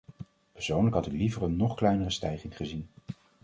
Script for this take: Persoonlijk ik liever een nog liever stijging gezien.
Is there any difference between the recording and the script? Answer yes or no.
yes